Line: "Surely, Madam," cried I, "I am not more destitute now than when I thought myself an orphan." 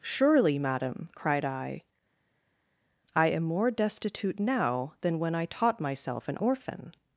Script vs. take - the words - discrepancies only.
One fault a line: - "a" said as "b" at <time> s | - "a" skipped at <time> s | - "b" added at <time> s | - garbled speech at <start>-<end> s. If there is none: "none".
- "not" skipped at 3.4 s
- "thought" said as "taught" at 5.4 s